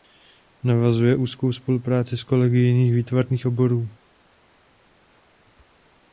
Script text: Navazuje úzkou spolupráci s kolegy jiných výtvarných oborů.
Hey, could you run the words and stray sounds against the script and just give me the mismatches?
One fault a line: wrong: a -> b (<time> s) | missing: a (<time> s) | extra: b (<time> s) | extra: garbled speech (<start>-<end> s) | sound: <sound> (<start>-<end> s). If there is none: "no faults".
no faults